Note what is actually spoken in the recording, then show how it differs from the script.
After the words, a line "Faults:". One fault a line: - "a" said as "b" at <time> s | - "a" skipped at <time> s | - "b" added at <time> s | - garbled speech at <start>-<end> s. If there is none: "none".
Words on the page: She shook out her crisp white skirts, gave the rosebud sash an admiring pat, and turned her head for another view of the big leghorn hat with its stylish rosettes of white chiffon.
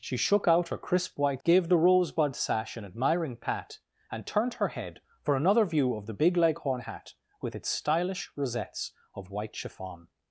She shook out her crisp white gave the rosebud sash an admiring pat, and turned her head for another view of the big leghorn hat with its stylish rosettes of white chiffon.
Faults:
- "skirts" skipped at 1.4 s